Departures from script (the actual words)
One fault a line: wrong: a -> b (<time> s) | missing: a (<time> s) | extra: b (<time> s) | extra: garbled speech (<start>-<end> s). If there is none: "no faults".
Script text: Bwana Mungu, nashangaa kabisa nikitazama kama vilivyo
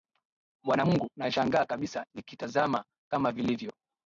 no faults